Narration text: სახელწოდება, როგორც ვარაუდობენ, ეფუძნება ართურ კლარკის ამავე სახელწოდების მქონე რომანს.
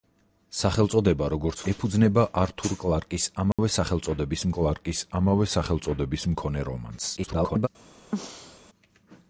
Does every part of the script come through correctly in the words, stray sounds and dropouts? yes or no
no